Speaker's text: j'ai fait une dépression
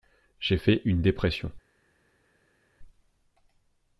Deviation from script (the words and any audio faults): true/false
false